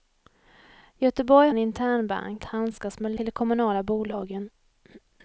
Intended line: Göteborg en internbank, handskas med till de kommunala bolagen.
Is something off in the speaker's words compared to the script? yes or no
no